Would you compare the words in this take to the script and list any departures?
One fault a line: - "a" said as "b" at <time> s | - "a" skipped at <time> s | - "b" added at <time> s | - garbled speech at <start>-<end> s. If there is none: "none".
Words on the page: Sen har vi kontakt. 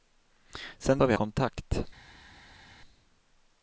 none